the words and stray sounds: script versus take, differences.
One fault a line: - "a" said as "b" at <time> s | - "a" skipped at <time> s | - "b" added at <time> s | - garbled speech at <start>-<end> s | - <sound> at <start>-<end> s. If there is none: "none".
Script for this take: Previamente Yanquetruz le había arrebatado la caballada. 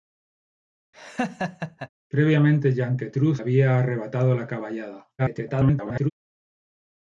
- laugh at 0.9-1.9 s
- "le" skipped at 3.4 s
- garbled speech at 5.2-6.1 s